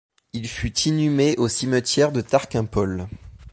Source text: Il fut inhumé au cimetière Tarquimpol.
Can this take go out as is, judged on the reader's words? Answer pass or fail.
fail